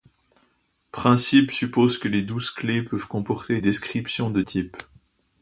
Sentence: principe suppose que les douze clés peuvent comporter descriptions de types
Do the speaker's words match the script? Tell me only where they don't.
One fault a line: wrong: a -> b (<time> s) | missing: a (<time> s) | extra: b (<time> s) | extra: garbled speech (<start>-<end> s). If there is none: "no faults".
no faults